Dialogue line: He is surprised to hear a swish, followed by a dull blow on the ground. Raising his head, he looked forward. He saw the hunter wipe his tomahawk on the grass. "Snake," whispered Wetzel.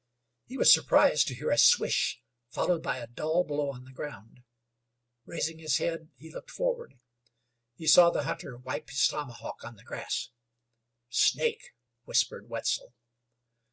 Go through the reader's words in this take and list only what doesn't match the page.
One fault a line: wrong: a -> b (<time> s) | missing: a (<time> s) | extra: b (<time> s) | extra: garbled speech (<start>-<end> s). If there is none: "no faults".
wrong: is -> was (0.5 s)